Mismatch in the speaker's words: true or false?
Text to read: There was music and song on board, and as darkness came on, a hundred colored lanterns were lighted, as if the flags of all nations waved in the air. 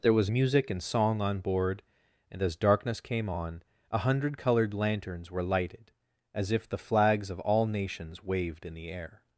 false